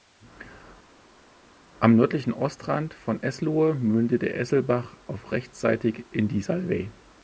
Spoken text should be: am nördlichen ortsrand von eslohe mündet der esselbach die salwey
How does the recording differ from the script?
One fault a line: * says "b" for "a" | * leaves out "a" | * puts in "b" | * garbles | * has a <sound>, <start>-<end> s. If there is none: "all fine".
* puts in "auf rechtsseitig in"